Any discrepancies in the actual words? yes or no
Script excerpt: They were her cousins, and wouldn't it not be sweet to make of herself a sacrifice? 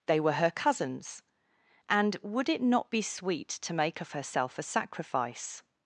yes